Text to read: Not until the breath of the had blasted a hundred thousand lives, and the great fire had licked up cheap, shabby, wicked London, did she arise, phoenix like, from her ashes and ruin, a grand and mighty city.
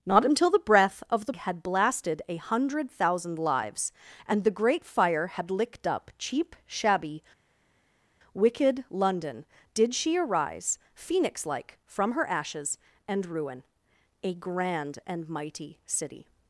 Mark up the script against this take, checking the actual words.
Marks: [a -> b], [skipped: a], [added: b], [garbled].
Not until the breath of the had blasted a hundred thousand lives, and the great fire had licked up cheap, shabby, wicked London, did she arise, phoenix like, from her ashes and ruin, a grand and mighty city.